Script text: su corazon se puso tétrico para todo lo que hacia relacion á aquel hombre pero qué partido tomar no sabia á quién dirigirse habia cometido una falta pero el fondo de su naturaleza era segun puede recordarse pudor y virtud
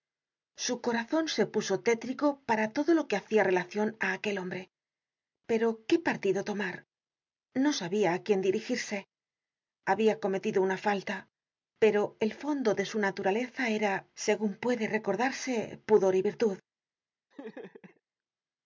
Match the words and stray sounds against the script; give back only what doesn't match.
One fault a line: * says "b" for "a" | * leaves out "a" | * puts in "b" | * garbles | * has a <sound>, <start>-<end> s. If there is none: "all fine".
* has a laugh, 17.3-18.0 s